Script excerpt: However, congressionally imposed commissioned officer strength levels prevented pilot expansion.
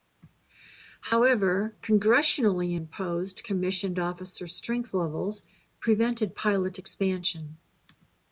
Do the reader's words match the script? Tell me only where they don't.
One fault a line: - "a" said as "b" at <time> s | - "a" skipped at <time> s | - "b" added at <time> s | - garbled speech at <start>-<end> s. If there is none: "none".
none